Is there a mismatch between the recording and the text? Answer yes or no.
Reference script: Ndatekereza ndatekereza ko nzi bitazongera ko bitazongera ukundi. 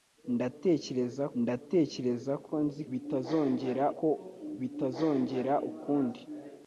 no